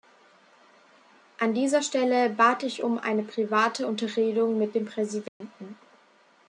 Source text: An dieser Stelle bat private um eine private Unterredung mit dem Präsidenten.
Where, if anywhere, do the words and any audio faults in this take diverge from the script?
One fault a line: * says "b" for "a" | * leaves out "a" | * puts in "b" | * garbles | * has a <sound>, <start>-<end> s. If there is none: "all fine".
* says "ich" for "private"
* has a dropout, 5.3-5.4 s